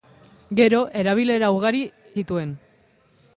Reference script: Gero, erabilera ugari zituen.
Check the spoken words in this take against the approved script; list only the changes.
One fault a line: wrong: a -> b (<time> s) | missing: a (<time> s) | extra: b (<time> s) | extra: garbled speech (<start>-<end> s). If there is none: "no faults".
no faults